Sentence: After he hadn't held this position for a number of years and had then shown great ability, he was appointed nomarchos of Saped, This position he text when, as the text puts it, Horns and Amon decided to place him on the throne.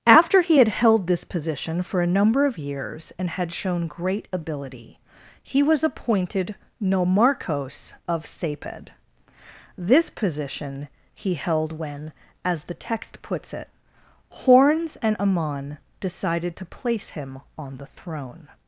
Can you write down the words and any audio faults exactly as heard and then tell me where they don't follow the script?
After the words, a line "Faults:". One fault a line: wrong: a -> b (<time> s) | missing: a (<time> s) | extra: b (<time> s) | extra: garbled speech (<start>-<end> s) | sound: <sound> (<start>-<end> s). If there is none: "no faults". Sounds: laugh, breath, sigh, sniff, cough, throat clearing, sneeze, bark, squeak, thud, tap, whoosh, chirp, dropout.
After he had held this position for a number of years and had shown great ability, he was appointed nomarchos of Saped, This position he held when, as the text puts it, Horns and Amon decided to place him on the throne.
Faults:
wrong: hadn't -> had (0.6 s)
missing: then (3.5 s)
wrong: text -> held (11.3 s)